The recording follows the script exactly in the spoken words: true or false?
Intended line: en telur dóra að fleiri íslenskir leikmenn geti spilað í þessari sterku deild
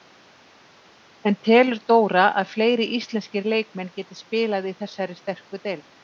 true